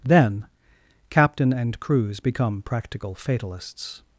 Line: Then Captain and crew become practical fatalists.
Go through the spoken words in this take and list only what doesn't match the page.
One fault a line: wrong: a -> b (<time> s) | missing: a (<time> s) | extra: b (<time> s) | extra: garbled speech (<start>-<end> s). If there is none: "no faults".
wrong: crew -> crews (1.8 s)